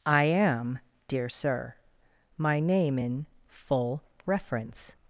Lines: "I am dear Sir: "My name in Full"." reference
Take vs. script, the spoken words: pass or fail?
pass